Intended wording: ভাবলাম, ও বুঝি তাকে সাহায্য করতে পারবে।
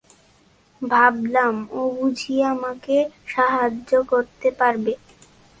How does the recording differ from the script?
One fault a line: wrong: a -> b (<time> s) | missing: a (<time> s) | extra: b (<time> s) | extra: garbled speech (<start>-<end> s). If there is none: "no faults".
wrong: তাকে -> আমাকে (2.5 s)